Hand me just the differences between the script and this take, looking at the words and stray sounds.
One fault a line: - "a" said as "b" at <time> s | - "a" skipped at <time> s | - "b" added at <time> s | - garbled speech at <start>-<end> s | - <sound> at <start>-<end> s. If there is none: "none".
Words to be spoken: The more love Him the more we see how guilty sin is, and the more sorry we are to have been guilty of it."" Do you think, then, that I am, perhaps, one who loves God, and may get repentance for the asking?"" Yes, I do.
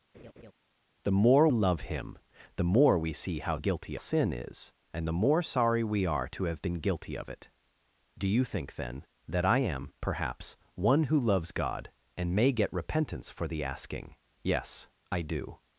- laugh at 0.1-0.5 s